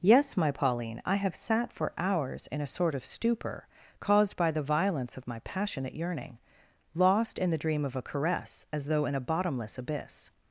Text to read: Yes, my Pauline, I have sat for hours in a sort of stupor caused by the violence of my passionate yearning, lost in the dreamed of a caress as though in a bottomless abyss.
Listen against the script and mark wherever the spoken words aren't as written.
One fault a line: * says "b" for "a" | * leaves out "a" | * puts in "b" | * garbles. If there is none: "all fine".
* says "dream" for "dreamed"